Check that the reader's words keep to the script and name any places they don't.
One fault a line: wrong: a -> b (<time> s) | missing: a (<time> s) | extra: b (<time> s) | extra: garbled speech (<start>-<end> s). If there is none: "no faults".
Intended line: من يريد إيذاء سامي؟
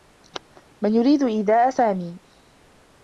no faults